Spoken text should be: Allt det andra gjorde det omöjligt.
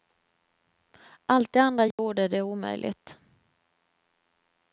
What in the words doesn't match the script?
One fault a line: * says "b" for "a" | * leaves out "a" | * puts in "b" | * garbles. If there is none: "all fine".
all fine